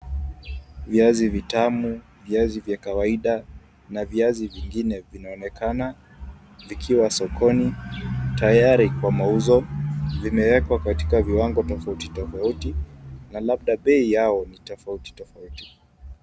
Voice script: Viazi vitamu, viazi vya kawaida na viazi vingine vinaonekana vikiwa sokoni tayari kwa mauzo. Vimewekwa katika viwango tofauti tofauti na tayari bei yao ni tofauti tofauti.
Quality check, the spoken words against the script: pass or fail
fail